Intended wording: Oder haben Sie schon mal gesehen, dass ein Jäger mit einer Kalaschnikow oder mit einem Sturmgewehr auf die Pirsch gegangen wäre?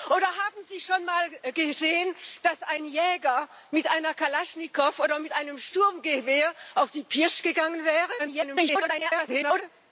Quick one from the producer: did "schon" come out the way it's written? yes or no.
yes